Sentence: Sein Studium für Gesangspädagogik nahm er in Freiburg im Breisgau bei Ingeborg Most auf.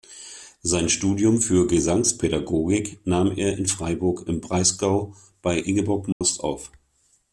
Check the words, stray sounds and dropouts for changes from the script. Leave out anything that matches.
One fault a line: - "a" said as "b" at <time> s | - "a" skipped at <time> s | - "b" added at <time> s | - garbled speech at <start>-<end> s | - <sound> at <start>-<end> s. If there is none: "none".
- dropout at 6.1-6.2 s